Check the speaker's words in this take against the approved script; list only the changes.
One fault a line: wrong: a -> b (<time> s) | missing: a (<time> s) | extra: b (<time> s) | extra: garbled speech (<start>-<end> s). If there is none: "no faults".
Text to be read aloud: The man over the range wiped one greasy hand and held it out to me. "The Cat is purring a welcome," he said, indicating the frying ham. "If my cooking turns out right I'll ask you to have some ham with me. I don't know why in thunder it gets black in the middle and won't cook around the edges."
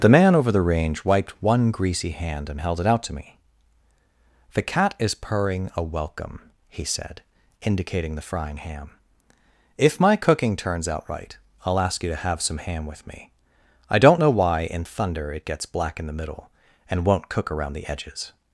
no faults